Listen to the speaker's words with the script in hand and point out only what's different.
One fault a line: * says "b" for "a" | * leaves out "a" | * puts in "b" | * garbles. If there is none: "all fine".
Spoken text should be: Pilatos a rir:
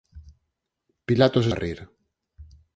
all fine